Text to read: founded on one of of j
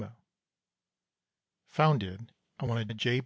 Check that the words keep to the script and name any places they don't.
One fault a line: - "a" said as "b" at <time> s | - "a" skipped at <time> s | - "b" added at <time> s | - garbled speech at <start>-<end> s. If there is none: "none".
none